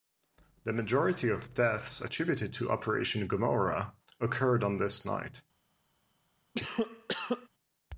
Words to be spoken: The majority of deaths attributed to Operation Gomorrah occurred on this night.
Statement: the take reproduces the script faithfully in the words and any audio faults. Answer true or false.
false